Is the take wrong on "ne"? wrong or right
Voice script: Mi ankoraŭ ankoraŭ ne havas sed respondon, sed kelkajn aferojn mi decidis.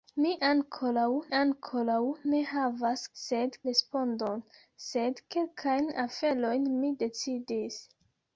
right